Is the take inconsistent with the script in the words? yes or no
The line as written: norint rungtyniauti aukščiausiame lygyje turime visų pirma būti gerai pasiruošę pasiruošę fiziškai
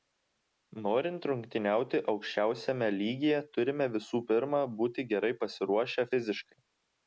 yes